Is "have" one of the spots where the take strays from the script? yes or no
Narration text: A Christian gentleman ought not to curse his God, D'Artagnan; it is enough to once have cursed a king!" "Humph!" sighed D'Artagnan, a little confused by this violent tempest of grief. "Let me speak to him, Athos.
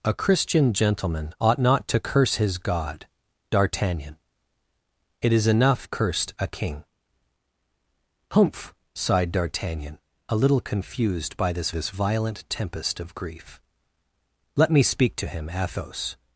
yes